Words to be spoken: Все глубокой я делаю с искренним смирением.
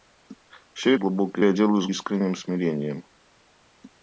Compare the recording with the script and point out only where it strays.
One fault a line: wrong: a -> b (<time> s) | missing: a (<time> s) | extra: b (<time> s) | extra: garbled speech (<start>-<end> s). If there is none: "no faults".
no faults